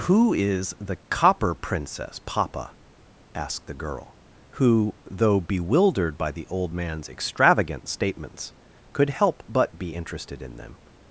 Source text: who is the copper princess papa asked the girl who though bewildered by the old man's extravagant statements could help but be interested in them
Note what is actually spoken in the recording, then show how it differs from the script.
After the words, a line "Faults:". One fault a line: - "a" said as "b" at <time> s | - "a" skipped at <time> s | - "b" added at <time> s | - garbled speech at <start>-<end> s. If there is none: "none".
who is the copper princess papa asked the girl who though bewildered by the old man's extravagant statements could help but be interested in them
Faults:
none